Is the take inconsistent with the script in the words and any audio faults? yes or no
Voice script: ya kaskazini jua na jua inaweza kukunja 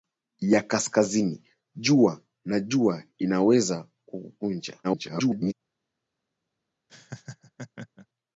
yes